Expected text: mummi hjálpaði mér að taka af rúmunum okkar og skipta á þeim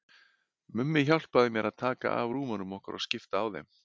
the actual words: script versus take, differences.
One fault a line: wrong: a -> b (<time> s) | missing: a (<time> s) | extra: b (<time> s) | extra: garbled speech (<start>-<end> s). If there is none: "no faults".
no faults